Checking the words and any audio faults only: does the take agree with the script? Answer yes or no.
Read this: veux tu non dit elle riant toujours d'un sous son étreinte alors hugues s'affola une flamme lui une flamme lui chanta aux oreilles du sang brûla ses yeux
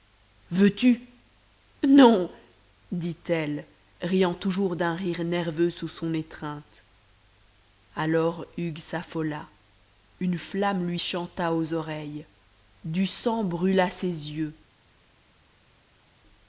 no